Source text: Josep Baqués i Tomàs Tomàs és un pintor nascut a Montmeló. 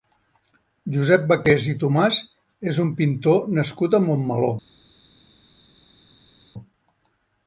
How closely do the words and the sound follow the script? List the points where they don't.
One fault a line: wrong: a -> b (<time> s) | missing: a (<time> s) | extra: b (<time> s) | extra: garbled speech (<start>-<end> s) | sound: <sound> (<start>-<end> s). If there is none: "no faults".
missing: Tomàs (2.2 s)